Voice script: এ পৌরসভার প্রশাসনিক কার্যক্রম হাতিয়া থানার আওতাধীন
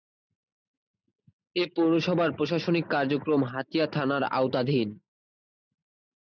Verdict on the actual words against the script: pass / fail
pass